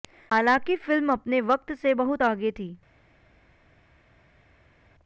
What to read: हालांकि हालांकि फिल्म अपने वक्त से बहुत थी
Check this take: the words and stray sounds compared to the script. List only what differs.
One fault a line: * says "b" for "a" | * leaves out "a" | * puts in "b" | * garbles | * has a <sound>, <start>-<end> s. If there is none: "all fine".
* leaves out "हालांकि"
* puts in "आगे"